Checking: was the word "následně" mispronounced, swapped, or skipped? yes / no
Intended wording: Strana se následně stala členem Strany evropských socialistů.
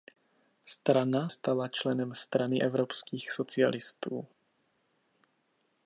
yes